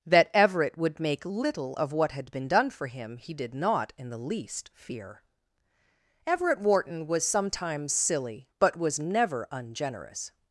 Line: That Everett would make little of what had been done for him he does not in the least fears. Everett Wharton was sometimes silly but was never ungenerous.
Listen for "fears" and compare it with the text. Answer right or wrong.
wrong